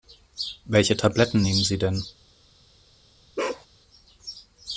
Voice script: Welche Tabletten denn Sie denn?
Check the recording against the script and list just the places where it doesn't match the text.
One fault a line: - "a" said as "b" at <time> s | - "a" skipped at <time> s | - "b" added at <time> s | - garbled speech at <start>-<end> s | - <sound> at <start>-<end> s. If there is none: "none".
- "denn" said as "nehmen" at 1.4 s
- bark at 3.4-3.7 s